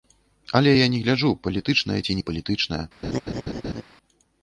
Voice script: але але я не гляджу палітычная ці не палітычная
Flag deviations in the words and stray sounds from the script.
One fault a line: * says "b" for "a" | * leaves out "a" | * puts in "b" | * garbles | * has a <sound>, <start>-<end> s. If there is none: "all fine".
* leaves out "але"
* has a laugh, 3.0-3.8 s